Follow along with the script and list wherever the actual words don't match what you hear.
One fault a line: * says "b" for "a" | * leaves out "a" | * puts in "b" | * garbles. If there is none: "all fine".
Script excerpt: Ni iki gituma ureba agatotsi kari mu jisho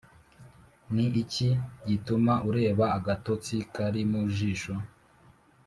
all fine